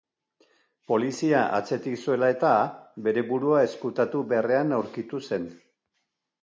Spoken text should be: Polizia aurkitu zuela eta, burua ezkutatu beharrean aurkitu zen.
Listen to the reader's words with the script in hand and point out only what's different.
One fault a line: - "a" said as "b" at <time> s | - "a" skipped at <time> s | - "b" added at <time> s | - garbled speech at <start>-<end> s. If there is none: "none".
- "aurkitu" said as "atzetik" at 1.6 s
- "bere" added at 3.1 s